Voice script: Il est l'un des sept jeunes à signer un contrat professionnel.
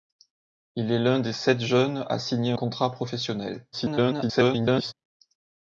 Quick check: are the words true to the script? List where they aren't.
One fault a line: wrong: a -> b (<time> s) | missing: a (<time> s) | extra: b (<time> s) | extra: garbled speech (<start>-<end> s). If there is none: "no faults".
missing: un (2.5 s)
extra: garbled speech (3.7-4.9 s)